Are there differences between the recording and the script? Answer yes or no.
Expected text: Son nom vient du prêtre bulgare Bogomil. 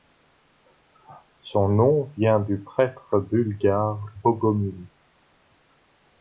no